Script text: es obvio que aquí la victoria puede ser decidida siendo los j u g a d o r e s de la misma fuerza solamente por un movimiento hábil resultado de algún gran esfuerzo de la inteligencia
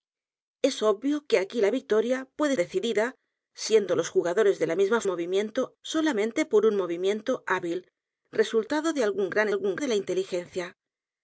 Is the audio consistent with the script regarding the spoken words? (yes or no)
no